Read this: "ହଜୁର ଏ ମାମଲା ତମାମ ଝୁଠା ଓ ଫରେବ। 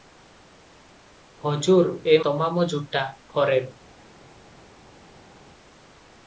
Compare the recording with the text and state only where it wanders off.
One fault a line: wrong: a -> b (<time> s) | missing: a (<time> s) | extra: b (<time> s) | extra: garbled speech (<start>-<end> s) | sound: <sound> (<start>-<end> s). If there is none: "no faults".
missing: ମାମଲା (2.2 s)
missing: ଓ (3.0 s)